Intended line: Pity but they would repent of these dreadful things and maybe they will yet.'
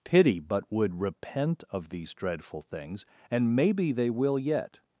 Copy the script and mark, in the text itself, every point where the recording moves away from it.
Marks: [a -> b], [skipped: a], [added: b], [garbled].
Pity but [skipped: they] would repent of these dreadful things and maybe they will yet.'